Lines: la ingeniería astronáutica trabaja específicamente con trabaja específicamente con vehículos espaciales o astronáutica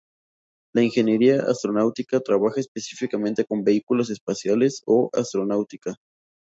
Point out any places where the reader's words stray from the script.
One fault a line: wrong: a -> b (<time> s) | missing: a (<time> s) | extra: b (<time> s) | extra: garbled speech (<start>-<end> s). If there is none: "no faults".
missing: trabaja específicamente con (3.6 s)